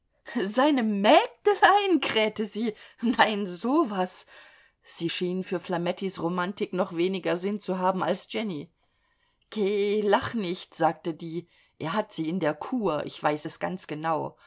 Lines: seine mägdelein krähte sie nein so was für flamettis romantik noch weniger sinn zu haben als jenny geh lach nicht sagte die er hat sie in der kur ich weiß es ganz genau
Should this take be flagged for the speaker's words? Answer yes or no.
yes